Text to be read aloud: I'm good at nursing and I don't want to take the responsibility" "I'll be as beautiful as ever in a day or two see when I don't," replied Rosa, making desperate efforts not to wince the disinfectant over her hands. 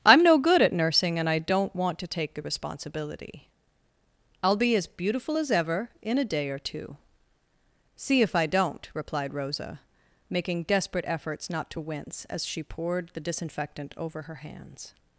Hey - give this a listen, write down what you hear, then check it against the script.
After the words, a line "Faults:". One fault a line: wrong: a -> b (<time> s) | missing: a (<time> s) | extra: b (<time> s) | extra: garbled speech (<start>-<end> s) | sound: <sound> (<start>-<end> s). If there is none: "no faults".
I'm no good at nursing and I don't want to take the responsibility" "I'll be as beautiful as ever in a day or two see if I don't," replied Rosa, making desperate efforts not to wince as she poured the disinfectant over her hands.
Faults:
extra: no (0.2 s)
wrong: when -> if (8.2 s)
extra: as she poured (12.3 s)